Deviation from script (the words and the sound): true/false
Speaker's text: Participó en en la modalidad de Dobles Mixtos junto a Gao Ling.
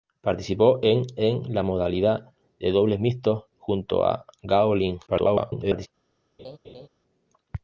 true